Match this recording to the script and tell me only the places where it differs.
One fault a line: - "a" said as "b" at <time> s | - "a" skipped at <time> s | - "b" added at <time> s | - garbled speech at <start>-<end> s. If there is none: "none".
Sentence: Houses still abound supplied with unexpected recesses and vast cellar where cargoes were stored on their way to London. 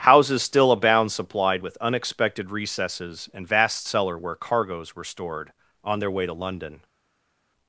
none